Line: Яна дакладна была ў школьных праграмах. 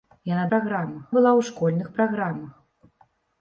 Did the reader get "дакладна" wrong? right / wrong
wrong